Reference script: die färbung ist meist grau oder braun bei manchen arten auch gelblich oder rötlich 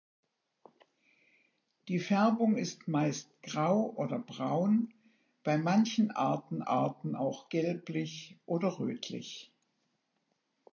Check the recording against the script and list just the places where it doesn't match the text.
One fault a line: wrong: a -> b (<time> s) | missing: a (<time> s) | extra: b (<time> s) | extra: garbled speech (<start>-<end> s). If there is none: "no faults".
extra: arten (6.6 s)